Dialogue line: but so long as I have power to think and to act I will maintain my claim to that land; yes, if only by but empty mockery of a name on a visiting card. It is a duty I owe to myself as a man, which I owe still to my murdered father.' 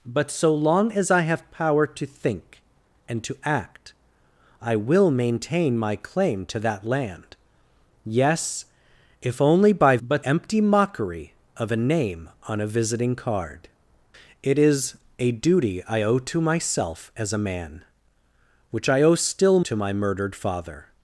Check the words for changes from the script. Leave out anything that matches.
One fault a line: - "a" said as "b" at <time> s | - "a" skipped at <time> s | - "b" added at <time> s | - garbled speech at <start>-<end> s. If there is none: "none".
none